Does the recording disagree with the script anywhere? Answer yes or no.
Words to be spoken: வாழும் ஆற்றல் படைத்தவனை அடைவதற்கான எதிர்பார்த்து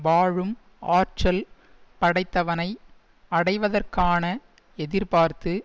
no